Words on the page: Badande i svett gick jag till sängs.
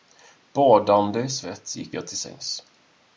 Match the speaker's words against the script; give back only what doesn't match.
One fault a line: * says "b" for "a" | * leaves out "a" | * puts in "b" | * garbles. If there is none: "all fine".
all fine